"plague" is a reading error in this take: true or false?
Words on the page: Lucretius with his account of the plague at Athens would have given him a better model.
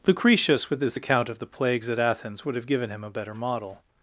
true